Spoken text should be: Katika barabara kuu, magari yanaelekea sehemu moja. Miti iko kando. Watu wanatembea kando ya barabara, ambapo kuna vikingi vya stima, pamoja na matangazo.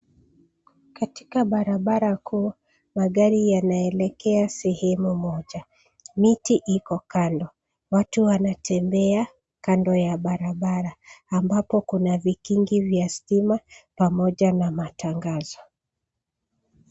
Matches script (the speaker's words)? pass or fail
pass